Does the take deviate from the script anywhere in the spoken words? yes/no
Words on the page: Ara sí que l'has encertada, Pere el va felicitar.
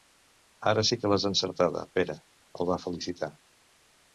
no